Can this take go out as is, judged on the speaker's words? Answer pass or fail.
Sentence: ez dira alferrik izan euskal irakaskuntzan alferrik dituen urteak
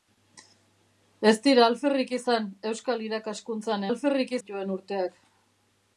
pass